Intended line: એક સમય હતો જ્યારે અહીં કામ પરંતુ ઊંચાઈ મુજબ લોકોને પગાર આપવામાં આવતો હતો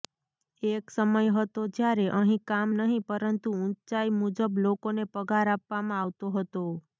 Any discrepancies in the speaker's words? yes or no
yes